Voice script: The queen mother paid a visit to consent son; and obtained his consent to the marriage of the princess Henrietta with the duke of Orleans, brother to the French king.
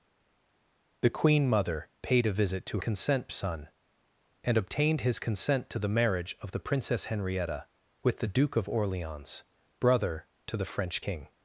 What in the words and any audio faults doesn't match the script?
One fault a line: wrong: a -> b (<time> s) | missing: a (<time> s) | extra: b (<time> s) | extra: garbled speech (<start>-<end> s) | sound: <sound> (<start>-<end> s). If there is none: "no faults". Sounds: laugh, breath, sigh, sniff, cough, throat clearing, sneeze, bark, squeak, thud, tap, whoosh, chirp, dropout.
no faults